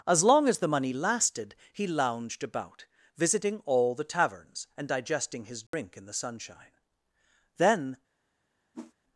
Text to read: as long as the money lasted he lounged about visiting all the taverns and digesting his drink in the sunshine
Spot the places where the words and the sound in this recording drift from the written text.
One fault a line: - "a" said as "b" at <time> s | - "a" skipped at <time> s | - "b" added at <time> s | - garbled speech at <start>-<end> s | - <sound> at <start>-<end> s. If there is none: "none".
- dropout at 5.7-5.7 s
- "then" added at 7.6 s
- whoosh at 8.7-8.9 s